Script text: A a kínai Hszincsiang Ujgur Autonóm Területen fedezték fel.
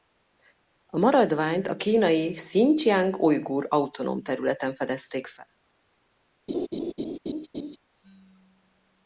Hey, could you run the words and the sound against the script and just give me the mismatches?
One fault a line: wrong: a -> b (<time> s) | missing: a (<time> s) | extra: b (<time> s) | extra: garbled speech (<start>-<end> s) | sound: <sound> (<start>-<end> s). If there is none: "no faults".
extra: maradványt (1.0 s)
sound: laugh (6.5-7.8 s)